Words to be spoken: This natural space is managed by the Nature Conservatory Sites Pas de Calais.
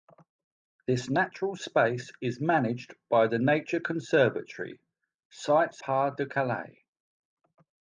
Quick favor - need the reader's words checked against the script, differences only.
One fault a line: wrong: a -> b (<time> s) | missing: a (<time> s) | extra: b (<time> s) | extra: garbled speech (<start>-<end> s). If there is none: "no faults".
no faults